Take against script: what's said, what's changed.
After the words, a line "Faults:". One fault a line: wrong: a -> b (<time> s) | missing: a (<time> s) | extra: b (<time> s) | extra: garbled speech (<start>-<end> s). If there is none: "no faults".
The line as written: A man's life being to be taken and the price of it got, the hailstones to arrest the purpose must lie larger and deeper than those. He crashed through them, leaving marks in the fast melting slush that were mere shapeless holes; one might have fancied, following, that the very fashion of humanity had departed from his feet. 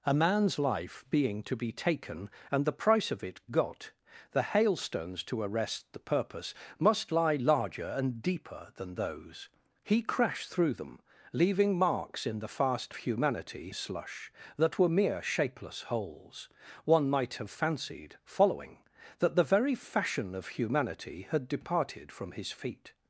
A man's life being to be taken and the price of it got, the hailstones to arrest the purpose must lie larger and deeper than those. He crashed through them, leaving marks in the fast humanity slush that were mere shapeless holes; one might have fancied, following, that the very fashion of humanity had departed from his feet.
Faults:
wrong: melting -> humanity (13.0 s)